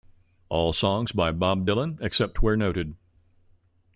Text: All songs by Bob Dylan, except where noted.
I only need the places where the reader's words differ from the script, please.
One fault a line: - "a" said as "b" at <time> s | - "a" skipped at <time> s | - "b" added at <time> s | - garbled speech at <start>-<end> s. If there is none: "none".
none